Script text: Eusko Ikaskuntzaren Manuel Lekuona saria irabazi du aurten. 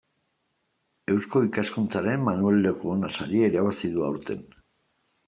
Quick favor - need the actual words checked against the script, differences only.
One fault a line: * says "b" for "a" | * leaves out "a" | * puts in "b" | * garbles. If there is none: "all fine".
all fine